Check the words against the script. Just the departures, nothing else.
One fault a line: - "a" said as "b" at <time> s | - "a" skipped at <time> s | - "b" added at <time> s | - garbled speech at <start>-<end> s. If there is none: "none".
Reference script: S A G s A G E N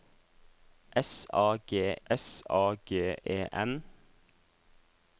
none